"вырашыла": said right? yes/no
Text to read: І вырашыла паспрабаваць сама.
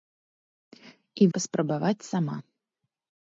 no